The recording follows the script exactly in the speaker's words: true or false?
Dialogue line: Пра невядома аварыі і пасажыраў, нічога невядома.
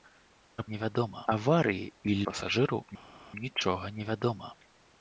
true